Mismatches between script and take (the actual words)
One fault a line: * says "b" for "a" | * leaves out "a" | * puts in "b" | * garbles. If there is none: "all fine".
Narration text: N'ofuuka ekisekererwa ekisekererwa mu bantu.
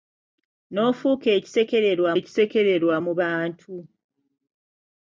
all fine